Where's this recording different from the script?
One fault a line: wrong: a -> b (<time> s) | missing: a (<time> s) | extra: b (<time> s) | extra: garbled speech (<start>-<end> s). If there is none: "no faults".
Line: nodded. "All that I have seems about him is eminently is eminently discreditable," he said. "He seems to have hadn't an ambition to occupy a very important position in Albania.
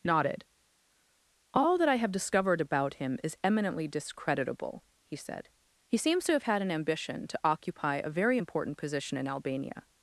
wrong: seems -> discovered (2.1 s)
missing: is eminently (3.9 s)
wrong: hadn't -> had (6.4 s)